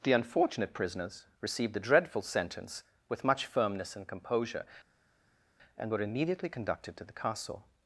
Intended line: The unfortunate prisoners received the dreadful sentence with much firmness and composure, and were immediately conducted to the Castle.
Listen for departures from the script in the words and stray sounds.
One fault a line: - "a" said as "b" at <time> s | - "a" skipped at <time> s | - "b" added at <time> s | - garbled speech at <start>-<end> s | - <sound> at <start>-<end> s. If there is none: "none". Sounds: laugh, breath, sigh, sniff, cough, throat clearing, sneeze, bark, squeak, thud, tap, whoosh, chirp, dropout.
none